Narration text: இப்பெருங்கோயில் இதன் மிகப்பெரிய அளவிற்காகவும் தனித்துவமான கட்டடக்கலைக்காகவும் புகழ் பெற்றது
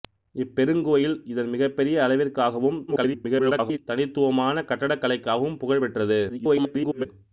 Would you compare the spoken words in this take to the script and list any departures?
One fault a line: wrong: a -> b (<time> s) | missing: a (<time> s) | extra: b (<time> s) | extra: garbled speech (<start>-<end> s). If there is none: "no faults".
extra: garbled speech (2.9-3.8 s)
extra: garbled speech (6.3-7.1 s)